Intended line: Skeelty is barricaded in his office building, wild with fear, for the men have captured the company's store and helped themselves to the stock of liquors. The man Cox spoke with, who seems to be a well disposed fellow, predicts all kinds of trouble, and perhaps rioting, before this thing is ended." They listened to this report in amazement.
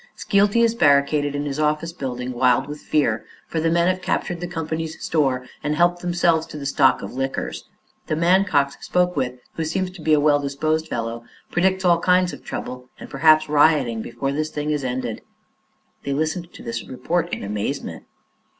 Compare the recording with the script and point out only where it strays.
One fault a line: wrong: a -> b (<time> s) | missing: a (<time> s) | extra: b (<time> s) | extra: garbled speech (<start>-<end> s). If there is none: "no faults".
no faults